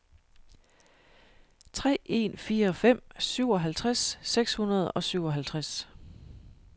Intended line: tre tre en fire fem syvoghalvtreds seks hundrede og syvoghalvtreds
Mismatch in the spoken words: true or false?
true